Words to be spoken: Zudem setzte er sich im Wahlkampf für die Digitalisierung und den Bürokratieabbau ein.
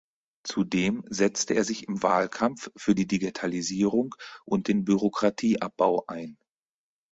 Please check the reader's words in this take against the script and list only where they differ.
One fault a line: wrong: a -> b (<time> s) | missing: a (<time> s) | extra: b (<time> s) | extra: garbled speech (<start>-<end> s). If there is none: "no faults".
no faults